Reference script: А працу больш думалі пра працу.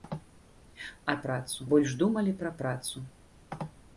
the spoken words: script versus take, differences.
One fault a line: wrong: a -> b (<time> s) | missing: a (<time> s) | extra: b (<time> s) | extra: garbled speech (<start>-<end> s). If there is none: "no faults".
no faults